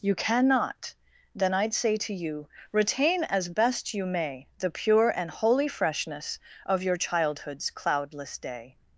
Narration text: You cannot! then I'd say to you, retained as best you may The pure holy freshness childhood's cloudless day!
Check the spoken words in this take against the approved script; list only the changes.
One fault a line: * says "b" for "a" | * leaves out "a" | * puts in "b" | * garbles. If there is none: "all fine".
* says "retain" for "retained"
* puts in "and"
* puts in "of your"